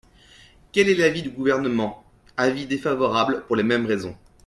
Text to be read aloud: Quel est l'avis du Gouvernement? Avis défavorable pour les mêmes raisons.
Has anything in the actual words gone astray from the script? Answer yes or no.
no